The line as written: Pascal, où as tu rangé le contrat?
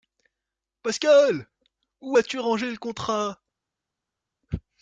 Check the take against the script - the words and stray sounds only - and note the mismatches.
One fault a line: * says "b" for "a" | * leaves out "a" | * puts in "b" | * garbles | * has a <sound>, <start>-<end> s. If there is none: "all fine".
all fine